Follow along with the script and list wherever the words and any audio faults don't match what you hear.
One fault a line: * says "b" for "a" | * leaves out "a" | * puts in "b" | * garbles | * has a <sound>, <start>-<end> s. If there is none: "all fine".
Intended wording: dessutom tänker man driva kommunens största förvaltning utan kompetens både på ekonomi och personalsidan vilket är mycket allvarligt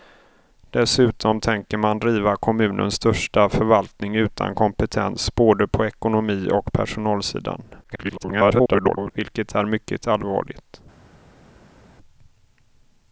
* garbles